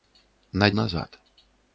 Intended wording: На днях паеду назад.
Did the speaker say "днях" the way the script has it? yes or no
no